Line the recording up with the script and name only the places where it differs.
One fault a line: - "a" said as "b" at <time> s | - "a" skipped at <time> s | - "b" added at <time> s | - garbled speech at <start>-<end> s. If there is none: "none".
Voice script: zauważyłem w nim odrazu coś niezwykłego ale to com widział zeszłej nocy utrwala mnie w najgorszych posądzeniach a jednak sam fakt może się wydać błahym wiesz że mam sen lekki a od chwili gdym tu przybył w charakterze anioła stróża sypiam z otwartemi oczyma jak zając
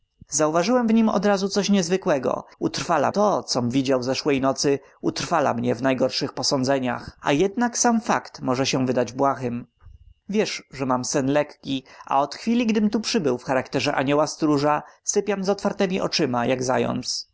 - "ale" said as "utrwala" at 2.6 s